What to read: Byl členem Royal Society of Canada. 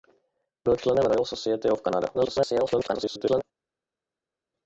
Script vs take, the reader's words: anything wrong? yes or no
yes